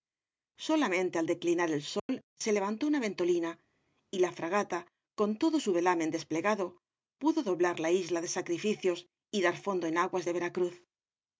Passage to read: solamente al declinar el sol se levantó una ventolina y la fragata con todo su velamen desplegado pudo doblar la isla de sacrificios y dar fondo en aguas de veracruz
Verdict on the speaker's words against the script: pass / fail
pass